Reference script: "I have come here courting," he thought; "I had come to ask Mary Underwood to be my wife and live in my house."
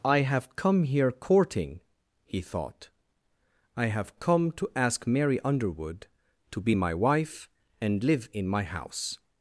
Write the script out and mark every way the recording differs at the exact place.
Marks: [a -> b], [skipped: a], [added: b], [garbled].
"I have come here courting," he thought; "I [had -> have] come to ask Mary Underwood to be my wife and live in my house."